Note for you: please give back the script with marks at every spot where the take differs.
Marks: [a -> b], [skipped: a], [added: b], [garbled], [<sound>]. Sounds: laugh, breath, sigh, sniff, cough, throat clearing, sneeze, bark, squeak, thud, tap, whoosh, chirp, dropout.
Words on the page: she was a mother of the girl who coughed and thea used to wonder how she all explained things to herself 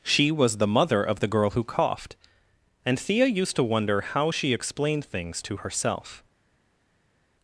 she was [a -> the] mother of the girl who coughed and thea used to wonder how she [skipped: all] explained things to herself